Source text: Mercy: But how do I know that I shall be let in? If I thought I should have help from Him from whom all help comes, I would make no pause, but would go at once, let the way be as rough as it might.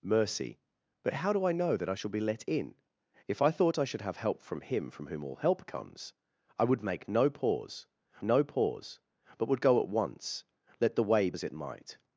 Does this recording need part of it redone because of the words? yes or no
yes